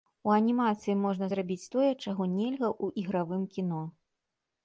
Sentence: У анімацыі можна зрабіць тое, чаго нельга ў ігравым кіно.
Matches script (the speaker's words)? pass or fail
pass